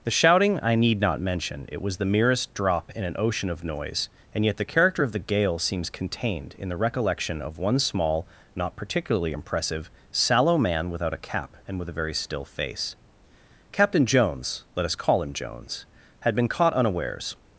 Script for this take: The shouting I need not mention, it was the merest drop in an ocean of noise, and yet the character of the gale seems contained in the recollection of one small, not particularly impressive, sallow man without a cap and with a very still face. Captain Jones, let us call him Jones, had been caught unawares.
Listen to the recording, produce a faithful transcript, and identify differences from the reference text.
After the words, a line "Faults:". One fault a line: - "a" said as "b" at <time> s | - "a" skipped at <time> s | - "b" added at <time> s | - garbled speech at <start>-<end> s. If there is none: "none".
The shouting I need not mention, it was the merest drop in an ocean of noise, and yet the character of the gale seems contained in the recollection of one small, not particularly impressive, sallow man without a cap and with a very still face. Captain Jones, let us call him Jones, had been caught unawares.
Faults:
none